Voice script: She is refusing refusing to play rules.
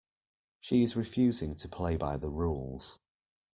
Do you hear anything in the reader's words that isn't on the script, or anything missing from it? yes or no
yes